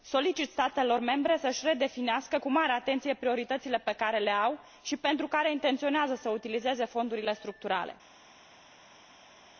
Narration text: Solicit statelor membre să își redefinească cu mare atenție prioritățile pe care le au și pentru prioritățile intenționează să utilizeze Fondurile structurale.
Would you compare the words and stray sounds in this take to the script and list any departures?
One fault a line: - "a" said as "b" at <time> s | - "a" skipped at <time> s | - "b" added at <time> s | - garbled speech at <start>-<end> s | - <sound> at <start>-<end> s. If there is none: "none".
- "prioritățile" said as "care" at 5.3 s